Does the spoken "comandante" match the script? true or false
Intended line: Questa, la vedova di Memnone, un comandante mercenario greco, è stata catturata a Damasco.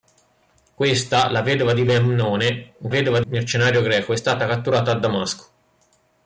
false